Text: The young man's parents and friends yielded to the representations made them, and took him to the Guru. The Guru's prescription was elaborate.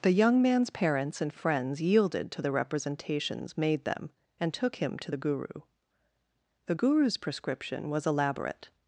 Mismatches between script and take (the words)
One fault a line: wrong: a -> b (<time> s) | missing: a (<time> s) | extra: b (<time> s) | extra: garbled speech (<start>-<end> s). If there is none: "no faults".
no faults